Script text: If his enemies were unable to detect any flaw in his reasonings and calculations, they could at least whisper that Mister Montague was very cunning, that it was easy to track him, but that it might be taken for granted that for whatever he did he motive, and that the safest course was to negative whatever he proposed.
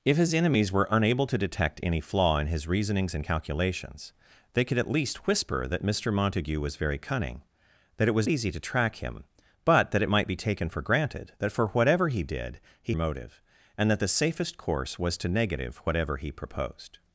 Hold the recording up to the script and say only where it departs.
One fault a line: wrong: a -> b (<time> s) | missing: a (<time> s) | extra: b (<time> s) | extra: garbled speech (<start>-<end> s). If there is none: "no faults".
no faults